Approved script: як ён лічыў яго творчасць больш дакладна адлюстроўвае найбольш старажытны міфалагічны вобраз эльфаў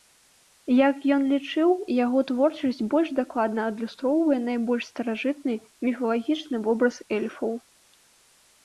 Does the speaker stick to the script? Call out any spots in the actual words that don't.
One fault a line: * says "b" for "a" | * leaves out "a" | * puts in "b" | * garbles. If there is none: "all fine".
all fine